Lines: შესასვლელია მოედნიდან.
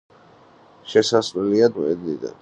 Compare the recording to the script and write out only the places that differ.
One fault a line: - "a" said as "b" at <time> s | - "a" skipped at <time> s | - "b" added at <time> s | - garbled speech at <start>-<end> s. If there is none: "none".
none